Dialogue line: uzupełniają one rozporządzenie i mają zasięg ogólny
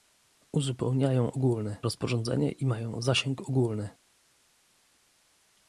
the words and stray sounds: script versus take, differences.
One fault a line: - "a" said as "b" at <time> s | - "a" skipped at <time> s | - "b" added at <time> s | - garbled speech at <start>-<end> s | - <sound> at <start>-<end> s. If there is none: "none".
- "one" said as "ogólny" at 1.4 s